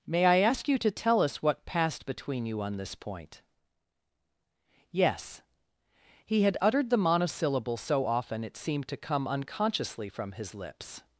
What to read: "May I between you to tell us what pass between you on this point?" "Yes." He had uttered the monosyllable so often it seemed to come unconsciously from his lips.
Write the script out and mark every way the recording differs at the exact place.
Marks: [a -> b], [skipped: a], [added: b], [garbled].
"May I [between -> ask] you to tell us what [pass -> passed] between you on this point?" "Yes." He had uttered the monosyllable so often it seemed to come unconsciously from his lips.